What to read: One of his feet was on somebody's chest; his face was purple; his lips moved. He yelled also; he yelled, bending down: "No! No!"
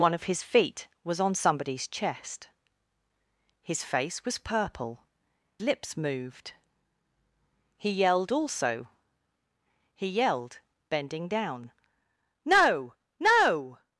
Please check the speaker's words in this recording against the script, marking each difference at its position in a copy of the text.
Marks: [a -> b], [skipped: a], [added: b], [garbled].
One of his feet was on somebody's chest; his face was purple; [skipped: his] lips moved. He yelled also; he yelled, bending down: "No! No!"